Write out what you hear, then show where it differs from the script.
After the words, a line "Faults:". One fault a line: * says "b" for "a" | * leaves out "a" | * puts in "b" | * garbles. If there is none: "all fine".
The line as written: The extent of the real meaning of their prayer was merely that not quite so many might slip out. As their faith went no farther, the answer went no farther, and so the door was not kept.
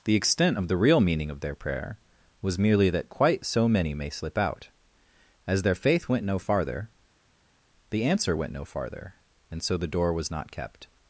The extent of the real meaning of their prayer was merely that quite so many may slip out. As their faith went no farther, the answer went no farther, and so the door was not kept.
Faults:
* leaves out "not"
* says "may" for "might"